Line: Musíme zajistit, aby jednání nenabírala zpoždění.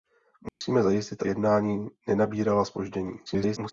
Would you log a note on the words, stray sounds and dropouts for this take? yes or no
yes